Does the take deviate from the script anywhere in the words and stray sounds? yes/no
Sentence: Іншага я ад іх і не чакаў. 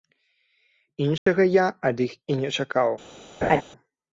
yes